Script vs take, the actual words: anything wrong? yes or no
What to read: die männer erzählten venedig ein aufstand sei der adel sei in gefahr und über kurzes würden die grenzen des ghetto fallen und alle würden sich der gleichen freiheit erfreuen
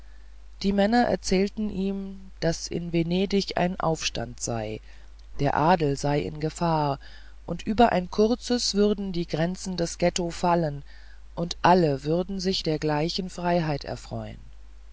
yes